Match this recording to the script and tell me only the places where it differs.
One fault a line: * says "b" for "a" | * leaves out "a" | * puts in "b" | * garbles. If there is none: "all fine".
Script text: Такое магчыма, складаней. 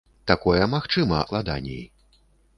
all fine